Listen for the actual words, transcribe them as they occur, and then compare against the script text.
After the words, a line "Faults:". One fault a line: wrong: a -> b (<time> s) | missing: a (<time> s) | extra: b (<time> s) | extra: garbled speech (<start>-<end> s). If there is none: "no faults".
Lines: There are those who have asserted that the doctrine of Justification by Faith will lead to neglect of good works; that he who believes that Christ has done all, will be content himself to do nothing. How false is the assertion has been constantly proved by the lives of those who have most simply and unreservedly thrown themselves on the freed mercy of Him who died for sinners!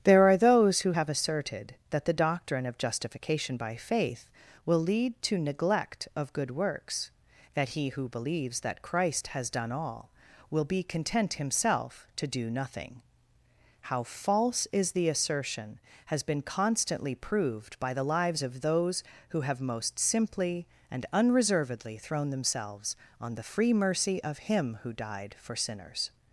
There are those who have asserted that the doctrine of Justification by Faith will lead to neglect of good works; that he who believes that Christ has done all, will be content himself to do nothing. How false is the assertion has been constantly proved by the lives of those who have most simply and unreservedly thrown themselves on the free mercy of Him who died for sinners!
Faults:
wrong: freed -> free (23.4 s)